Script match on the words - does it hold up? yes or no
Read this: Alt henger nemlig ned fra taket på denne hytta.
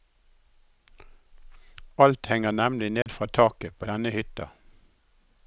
yes